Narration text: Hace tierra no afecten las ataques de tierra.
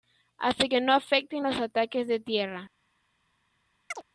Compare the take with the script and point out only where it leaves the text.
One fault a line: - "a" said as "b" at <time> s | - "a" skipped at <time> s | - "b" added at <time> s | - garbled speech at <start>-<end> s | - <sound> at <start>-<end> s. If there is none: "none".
- "tierra" said as "que" at 0.7 s
- "las" said as "los" at 1.4 s
- chirp at 3.9-4.0 s